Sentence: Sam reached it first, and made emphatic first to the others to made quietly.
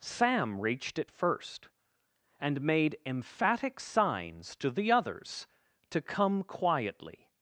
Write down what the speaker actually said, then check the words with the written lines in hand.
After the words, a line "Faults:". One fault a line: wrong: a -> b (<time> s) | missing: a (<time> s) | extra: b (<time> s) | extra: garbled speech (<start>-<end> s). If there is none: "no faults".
Sam reached it first, and made emphatic signs to the others to come quietly.
Faults:
wrong: first -> signs (3.8 s)
wrong: made -> come (6.0 s)